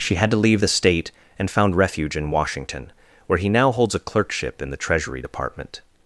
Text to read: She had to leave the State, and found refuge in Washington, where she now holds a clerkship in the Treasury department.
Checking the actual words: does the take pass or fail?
fail